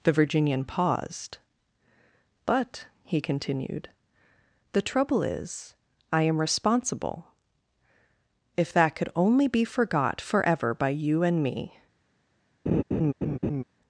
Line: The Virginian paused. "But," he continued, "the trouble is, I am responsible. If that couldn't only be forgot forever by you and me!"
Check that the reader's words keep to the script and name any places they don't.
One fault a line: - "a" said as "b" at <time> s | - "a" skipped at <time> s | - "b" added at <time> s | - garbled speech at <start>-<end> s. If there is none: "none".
- "couldn't" said as "could" at 8.9 s